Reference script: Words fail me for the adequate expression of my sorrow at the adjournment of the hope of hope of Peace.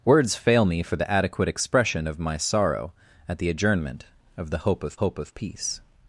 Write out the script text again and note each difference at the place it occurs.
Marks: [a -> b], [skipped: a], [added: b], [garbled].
Words fail me for the adequate expression of my sorrow at the adjournment of the hope of hope of Peace.